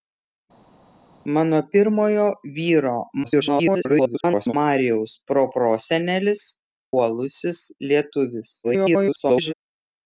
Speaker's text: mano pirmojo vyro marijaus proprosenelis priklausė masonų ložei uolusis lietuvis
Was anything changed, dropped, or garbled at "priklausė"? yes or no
yes